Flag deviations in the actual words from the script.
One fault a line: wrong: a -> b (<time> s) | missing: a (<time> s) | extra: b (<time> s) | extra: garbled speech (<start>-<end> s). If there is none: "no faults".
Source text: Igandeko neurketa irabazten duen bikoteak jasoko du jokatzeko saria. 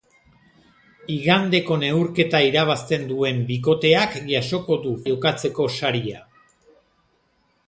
no faults